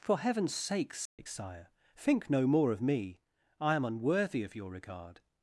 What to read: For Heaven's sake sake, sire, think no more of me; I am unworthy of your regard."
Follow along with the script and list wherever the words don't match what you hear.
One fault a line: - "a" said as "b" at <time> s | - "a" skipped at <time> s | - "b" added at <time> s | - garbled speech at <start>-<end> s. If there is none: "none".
none